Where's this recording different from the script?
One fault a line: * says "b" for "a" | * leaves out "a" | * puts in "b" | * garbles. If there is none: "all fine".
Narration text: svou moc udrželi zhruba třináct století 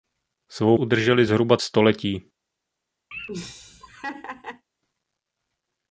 * leaves out "moc"
* leaves out "třináct"